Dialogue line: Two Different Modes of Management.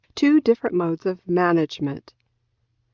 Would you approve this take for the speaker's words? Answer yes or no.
yes